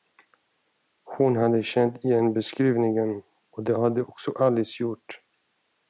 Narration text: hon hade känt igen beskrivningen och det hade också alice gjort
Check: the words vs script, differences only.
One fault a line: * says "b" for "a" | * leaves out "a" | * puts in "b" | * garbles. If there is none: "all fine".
all fine